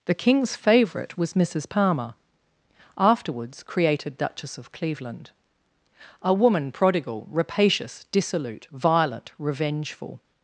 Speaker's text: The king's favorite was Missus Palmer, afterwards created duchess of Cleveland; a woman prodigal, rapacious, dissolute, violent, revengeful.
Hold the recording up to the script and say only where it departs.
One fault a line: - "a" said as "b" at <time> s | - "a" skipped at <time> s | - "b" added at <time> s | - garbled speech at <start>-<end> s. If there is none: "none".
none